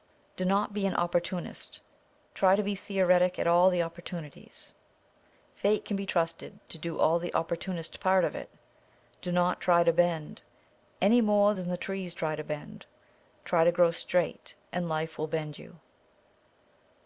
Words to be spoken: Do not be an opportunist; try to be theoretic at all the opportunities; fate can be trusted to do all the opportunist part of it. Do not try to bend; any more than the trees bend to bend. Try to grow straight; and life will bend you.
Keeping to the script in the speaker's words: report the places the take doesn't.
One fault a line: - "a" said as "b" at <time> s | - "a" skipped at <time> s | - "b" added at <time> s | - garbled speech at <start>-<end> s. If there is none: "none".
- "bend" said as "try" at 12.1 s